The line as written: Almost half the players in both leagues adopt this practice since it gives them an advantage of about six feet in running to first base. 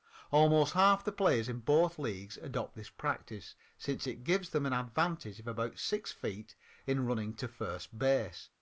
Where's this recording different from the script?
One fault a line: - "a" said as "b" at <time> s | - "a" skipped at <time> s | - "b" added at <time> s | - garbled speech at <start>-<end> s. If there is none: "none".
none